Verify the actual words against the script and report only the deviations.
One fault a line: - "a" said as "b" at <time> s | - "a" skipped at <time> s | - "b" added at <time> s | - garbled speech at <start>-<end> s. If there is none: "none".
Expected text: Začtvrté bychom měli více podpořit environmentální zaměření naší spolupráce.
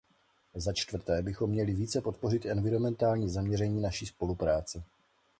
none